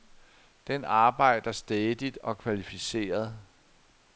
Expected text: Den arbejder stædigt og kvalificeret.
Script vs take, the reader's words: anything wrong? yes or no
no